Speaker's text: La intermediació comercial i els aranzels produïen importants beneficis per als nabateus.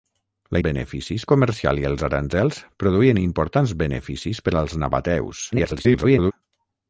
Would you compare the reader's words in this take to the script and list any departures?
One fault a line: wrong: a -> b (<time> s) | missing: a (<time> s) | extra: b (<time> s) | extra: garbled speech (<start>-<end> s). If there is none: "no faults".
wrong: intermediació -> beneficis (0.7 s)
extra: garbled speech (5.5-6.3 s)